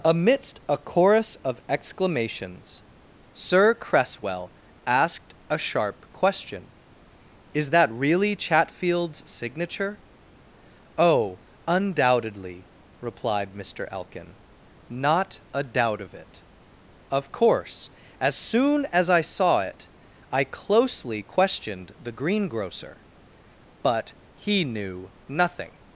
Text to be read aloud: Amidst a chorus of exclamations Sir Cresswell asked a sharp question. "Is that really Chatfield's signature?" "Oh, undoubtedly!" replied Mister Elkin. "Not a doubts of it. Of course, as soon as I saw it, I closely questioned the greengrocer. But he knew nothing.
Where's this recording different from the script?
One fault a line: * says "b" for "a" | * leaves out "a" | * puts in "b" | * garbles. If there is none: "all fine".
* says "doubt" for "doubts"